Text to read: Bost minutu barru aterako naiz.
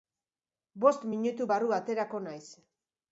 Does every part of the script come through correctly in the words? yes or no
yes